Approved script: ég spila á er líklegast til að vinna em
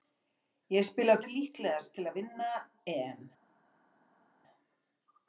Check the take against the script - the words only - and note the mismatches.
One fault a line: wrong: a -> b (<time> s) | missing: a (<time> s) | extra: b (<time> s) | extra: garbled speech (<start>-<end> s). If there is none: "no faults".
no faults